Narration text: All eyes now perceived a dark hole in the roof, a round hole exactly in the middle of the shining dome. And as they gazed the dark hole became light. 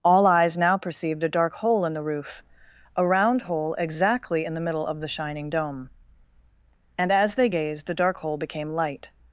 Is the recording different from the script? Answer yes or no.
no